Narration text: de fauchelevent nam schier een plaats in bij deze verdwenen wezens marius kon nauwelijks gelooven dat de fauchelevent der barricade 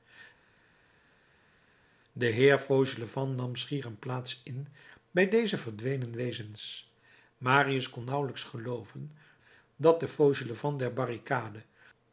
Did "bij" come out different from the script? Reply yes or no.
no